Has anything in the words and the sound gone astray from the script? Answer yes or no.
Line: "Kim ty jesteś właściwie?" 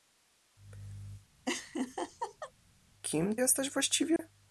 yes